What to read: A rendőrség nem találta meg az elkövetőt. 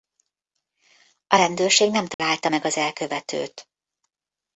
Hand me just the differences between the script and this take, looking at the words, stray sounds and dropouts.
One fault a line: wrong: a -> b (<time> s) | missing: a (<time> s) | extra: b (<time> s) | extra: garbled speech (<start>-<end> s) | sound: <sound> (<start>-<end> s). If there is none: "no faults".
sound: dropout (2.1-2.2 s)